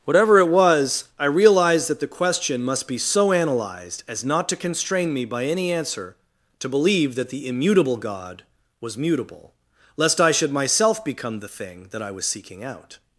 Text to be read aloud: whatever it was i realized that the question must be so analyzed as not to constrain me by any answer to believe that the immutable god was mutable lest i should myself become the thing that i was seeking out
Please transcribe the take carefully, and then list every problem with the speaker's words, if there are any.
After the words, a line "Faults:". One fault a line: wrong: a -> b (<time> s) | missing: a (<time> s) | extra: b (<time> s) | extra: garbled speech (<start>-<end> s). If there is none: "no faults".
whatever it was i realized that the question must be so analyzed as not to constrain me by any answer to believe that the immutable god was mutable lest i should myself become the thing that i was seeking out
Faults:
no faults